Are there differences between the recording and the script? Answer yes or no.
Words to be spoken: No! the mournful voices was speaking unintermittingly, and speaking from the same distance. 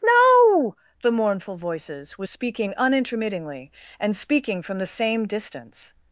no